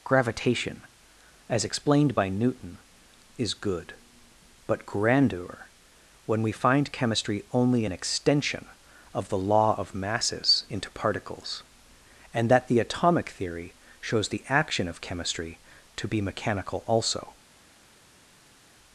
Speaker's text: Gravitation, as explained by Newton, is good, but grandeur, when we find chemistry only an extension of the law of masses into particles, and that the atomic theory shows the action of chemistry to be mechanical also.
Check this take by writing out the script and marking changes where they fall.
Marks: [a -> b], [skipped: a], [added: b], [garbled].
Gravitation, as explained by Newton, is good, but grandeur, when we find chemistry only an extension of the law of masses into particles, and that the atomic theory shows the action of chemistry to be mechanical also.